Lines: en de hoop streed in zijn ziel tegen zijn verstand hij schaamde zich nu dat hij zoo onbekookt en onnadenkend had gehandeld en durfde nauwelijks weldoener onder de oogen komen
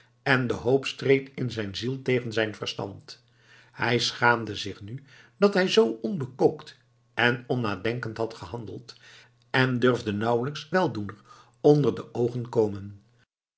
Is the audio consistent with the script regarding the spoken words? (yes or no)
yes